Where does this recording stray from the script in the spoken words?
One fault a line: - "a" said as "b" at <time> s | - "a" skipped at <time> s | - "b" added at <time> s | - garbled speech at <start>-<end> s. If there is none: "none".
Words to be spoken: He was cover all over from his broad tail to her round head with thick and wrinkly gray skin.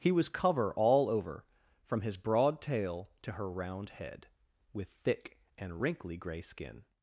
none